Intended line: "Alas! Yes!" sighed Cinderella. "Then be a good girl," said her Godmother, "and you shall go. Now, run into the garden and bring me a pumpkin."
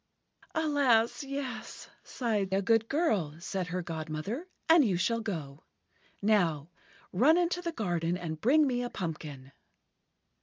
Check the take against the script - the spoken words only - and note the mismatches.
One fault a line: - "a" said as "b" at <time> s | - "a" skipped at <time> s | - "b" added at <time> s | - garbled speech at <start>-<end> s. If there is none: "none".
- "Cinderella Then be" skipped at 2.5 s